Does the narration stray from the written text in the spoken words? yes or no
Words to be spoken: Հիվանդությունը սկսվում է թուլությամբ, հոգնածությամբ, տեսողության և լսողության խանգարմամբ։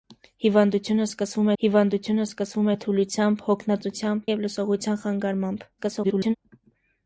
yes